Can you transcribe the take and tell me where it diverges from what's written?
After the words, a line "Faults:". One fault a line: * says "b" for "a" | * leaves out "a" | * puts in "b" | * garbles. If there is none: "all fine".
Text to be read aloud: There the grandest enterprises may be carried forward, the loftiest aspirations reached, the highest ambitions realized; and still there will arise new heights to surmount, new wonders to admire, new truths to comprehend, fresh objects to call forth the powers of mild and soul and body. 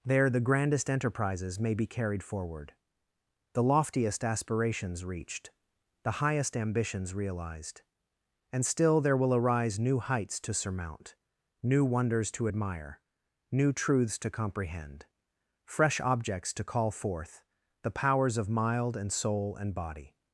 There the grandest enterprises may be carried forward, the loftiest aspirations reached, the highest ambitions realized; and still there will arise new heights to surmount, new wonders to admire, new truths to comprehend, fresh objects to call forth the powers of mild and soul and body.
Faults:
all fine